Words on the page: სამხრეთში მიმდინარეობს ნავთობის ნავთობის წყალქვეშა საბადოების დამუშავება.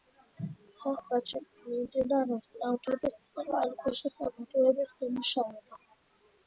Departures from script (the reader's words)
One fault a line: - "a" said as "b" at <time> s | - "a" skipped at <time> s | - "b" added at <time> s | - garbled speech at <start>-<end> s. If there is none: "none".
- "ნავთობის" skipped at 3.2 s